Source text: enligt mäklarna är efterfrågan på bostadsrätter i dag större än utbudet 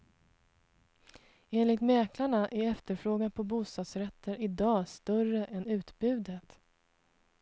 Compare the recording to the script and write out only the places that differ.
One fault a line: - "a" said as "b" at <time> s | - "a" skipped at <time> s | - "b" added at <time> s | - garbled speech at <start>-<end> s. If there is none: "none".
none